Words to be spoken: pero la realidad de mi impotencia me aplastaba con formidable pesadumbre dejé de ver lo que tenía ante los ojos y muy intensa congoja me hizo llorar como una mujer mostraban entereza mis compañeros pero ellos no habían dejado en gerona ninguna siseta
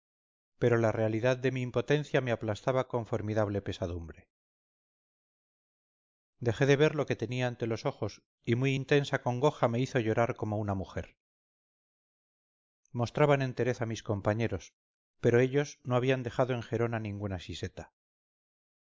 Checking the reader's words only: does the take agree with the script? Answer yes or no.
yes